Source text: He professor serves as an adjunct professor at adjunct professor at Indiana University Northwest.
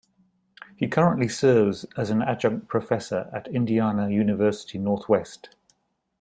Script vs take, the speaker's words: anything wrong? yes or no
yes